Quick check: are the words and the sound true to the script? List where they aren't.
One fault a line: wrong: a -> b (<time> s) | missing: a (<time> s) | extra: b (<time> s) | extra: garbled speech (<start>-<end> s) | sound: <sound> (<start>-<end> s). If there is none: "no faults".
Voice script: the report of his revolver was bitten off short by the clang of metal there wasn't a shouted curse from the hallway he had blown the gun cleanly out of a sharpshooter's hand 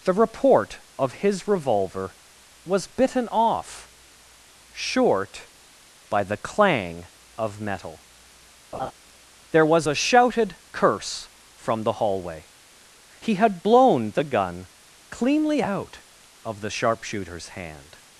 sound: laugh (8.7-8.9 s)
wrong: wasn't -> was (9.7 s)
wrong: a -> the (16.6 s)